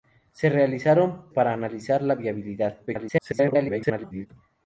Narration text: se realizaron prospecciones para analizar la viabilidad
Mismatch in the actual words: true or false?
true